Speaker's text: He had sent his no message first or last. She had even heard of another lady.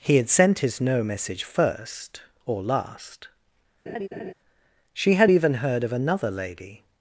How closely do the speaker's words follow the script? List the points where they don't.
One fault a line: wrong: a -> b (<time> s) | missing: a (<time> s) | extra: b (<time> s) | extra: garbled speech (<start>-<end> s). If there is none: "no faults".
no faults